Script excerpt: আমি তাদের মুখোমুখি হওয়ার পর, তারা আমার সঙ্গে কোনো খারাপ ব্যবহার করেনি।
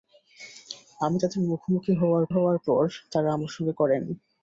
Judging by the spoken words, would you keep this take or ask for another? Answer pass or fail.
fail